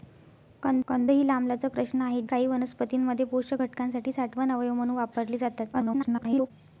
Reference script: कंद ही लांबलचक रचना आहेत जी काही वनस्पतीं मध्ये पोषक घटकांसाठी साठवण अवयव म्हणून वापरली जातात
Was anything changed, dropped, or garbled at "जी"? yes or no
yes